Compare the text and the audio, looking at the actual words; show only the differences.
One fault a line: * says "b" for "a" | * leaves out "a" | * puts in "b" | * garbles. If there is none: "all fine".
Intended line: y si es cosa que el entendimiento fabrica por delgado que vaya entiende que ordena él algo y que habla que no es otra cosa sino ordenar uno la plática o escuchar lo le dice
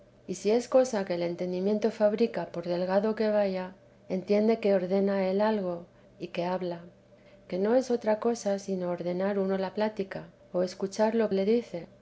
all fine